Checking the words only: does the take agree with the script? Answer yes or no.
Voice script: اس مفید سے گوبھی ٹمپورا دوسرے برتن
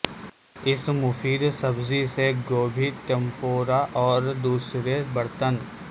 no